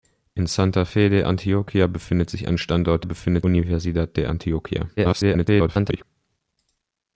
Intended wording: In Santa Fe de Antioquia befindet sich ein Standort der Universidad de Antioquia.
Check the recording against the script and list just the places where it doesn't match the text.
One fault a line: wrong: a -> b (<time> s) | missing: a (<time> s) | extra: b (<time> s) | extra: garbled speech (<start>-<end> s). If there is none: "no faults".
wrong: der -> befindet (3.0 s)
extra: garbled speech (5.0-6.0 s)